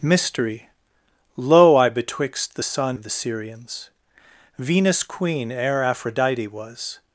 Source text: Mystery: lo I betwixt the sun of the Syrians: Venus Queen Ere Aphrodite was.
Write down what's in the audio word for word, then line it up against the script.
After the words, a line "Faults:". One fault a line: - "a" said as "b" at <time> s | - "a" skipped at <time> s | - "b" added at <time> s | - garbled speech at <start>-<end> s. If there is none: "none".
Mystery: lo I betwixt the sun of the Syrians: Venus Queen Ere Aphrodite was.
Faults:
none